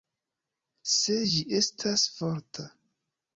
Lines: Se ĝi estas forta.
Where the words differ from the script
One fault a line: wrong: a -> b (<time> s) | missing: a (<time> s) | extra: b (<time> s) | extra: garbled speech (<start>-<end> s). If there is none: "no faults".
no faults